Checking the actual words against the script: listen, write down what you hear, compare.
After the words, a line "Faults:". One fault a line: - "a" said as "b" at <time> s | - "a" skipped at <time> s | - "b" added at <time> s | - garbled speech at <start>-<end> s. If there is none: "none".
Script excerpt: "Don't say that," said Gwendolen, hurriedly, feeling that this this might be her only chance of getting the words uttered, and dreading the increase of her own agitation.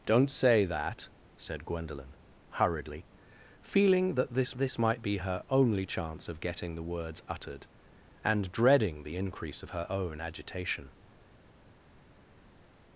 "Don't say that," said Gwendolen, hurriedly, feeling that this this might be her only chance of getting the words uttered, and dreading the increase of her own agitation.
Faults:
none